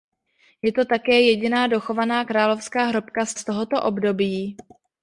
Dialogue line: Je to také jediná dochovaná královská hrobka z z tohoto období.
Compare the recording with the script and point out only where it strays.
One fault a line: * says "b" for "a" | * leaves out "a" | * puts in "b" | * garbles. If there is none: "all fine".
all fine